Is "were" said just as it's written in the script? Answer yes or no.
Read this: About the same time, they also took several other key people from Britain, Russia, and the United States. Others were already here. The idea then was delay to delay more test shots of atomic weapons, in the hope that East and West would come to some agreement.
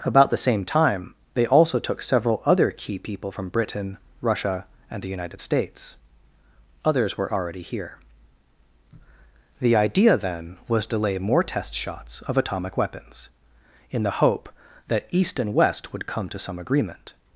yes